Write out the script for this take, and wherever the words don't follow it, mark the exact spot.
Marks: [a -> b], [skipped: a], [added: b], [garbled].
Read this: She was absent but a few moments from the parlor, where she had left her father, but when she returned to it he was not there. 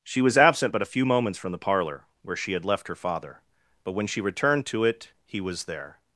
She was absent but a few moments from the parlor, where she had left her father, but when she returned to it he was [skipped: not] there.